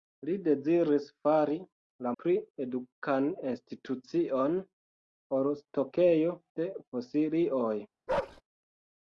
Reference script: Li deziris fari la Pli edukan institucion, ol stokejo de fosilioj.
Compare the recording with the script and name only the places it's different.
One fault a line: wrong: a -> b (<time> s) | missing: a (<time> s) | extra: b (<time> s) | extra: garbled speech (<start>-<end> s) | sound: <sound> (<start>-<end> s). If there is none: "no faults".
sound: bark (8.1-8.4 s)